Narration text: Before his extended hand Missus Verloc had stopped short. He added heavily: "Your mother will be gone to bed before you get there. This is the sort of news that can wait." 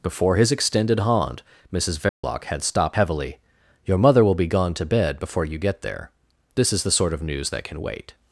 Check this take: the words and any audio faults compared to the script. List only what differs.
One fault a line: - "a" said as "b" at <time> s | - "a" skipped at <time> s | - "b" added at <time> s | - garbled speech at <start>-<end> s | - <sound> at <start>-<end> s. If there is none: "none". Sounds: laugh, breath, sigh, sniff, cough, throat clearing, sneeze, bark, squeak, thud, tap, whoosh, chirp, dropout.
- dropout at 2.1-2.2 s
- "short He added" skipped at 3.0 s